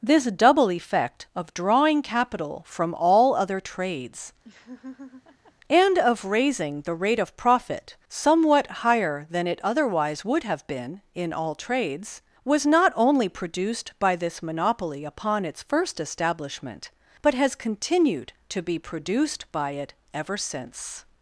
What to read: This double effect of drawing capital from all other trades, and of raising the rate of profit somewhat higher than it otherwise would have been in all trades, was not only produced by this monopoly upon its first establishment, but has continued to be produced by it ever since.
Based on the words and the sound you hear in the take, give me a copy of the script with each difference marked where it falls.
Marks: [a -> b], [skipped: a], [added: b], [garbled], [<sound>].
This double effect of drawing capital from all other trades, [laugh] and of raising the rate of profit somewhat higher than it otherwise would have been in all trades, was not only produced by this monopoly upon its first establishment, but has continued to be produced by it ever since.